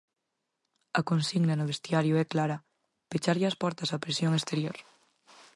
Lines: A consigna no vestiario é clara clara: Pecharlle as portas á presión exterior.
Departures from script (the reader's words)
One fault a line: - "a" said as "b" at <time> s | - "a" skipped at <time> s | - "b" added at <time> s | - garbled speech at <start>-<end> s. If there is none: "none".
- "clara" skipped at 2.6 s